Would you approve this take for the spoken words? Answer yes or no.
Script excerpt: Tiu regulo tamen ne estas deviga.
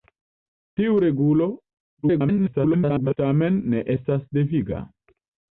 no